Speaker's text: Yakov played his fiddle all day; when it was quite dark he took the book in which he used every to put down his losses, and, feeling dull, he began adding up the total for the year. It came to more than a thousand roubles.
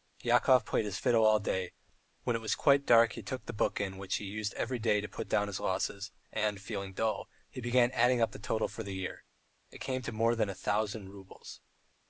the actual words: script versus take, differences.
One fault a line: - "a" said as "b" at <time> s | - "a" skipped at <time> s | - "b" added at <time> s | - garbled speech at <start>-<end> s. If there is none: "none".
- "day" added at 4.8 s